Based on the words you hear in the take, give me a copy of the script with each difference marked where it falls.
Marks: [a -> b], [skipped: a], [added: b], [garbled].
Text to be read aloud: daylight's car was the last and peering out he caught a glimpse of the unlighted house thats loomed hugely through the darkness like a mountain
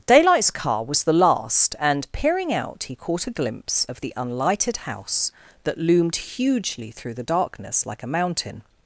daylight's car was the last and peering out he caught a glimpse of the unlighted house [thats -> that] loomed hugely through the darkness like a mountain